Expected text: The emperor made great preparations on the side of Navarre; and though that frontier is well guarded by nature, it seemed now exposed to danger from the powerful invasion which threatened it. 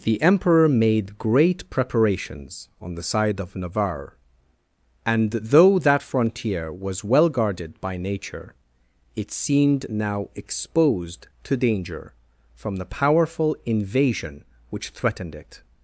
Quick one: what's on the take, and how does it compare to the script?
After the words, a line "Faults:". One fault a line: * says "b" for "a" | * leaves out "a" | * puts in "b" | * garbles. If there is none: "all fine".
The emperor made great preparations on the side of Navarre; and though that frontier was well guarded by nature, it seemed now exposed to danger from the powerful invasion which threatened it.
Faults:
* says "was" for "is"